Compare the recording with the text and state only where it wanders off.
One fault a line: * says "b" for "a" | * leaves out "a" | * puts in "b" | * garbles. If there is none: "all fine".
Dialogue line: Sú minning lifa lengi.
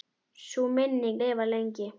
all fine